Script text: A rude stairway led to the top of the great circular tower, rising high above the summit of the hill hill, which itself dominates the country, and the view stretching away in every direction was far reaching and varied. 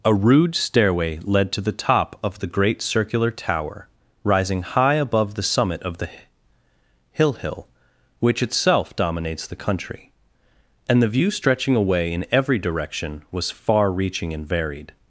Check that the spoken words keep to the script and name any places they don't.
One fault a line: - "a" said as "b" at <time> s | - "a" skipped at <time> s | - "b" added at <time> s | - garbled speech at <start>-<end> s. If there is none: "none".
none